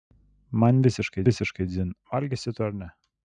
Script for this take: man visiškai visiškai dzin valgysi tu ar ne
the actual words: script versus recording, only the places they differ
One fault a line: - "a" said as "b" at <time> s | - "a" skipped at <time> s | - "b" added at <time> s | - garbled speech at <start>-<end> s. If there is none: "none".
none